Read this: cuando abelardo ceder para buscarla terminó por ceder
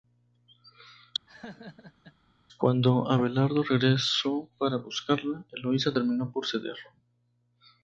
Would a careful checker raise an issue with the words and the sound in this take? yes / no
yes